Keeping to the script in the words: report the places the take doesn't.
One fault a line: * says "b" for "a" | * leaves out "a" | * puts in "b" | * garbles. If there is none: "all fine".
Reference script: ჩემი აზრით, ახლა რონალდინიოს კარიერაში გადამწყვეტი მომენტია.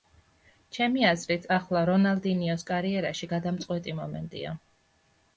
all fine